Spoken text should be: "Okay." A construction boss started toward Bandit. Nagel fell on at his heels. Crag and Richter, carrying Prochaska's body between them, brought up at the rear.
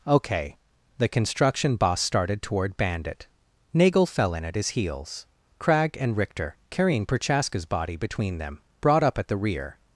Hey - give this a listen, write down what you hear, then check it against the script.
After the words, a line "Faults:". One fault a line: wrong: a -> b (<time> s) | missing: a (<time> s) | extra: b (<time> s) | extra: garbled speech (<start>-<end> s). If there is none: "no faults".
"Okay." The construction boss started toward Bandit. Nagel fell in at his heels. Crag and Richter, carrying Prochaska's body between them, brought up at the rear.
Faults:
wrong: A -> The (1.0 s)
wrong: on -> in (4.3 s)